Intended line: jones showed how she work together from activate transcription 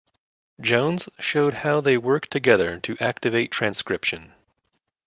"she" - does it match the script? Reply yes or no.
no